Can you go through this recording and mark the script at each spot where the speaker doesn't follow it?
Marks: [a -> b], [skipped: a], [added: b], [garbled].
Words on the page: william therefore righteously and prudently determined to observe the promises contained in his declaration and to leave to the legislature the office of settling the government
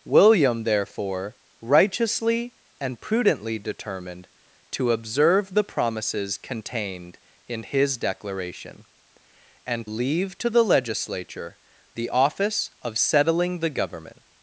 william therefore righteously and prudently determined to observe the promises contained in his declaration and [skipped: to] leave to the legislature the office of settling the government